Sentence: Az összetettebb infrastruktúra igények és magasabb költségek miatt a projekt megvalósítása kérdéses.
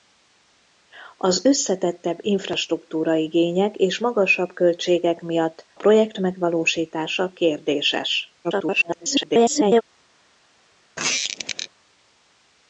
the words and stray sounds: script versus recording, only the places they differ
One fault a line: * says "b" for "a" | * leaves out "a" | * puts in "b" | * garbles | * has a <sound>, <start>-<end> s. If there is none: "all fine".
* leaves out "a"
* garbles
* has a squeak, 11.0-11.7 s